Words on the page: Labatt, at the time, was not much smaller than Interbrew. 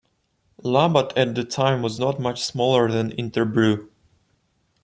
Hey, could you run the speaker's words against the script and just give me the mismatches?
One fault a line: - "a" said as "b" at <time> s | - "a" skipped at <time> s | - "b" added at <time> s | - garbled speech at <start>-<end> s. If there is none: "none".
none